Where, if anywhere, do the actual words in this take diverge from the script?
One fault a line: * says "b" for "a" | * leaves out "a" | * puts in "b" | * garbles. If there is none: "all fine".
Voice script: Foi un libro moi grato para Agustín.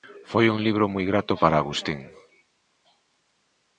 all fine